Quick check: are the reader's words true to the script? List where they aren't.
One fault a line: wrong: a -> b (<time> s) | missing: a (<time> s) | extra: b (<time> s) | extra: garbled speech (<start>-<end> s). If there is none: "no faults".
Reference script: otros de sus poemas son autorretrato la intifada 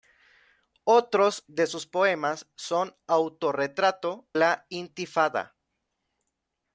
no faults